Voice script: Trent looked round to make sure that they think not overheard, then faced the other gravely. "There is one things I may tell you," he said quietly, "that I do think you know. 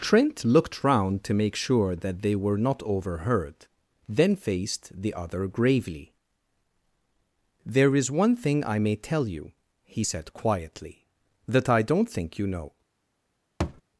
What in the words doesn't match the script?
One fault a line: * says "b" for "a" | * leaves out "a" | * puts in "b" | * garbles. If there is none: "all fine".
* says "were" for "think"
* says "thing" for "things"
* says "don't" for "do"